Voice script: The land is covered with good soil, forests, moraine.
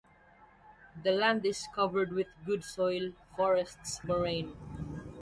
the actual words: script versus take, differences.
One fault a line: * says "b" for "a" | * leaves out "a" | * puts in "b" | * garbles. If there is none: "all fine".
all fine